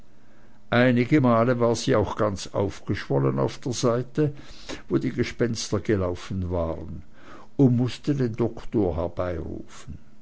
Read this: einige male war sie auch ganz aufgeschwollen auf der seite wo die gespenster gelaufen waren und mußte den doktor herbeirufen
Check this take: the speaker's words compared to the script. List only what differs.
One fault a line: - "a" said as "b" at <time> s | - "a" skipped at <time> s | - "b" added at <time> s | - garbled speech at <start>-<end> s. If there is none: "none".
none